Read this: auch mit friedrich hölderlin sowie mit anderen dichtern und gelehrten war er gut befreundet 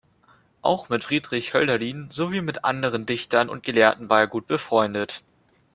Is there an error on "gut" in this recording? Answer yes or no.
no